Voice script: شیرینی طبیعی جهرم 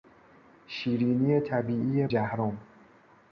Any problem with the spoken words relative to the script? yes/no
no